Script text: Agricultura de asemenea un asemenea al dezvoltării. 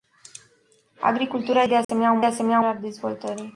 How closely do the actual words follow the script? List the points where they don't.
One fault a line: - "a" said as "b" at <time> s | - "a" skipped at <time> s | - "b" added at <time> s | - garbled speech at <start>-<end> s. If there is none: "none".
none